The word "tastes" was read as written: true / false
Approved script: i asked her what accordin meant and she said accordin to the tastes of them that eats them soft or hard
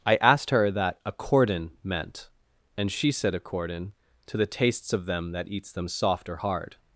true